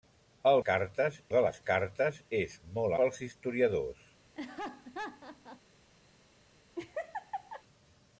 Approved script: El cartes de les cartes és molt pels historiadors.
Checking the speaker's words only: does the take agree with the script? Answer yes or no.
yes